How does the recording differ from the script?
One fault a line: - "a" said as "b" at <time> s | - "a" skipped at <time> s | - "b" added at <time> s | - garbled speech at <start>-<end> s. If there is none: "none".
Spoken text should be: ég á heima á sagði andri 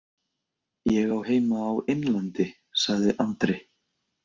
- "innlandi" added at 1.9 s